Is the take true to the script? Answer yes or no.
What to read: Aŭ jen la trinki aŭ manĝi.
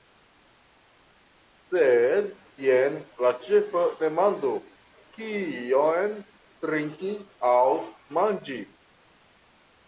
no